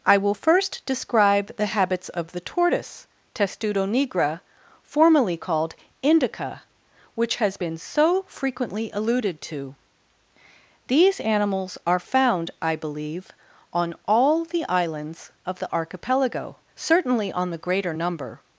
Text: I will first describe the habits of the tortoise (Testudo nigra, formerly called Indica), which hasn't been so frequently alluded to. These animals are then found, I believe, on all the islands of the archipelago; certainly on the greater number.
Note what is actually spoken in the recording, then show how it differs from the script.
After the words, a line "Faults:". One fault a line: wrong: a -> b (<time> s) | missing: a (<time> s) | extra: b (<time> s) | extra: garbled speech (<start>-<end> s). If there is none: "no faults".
I will first describe the habits of the tortoise (Testudo nigra, formerly called Indica), which has been so frequently alluded to. These animals are found, I believe, on all the islands of the archipelago; certainly on the greater number.
Faults:
wrong: hasn't -> has (7.4 s)
missing: then (12.0 s)